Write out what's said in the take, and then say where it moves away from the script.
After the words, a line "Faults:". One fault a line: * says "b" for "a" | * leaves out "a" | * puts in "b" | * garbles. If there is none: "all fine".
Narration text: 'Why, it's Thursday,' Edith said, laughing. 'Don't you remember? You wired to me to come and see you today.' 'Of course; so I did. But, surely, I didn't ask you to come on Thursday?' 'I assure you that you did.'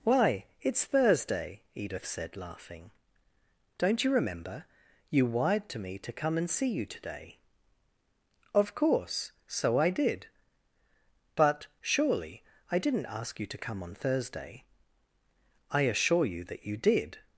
'Why, it's Thursday,' Edith said, laughing. 'Don't you remember? You wired to me to come and see you today.' 'Of course; so I did. But, surely, I didn't ask you to come on Thursday?' 'I assure you that you did.'
Faults:
all fine